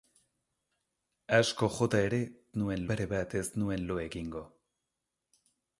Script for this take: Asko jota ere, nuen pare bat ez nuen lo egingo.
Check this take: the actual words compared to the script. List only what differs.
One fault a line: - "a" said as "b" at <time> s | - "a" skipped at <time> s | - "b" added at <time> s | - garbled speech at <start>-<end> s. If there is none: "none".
none